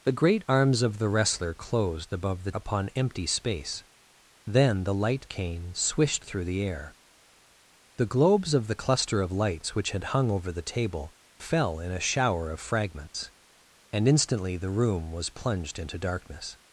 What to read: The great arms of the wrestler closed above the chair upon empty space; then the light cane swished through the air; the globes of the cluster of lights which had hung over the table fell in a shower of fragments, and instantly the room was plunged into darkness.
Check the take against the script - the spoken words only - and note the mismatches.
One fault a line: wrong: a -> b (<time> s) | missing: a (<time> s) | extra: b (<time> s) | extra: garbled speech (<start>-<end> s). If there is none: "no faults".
missing: chair (2.5 s)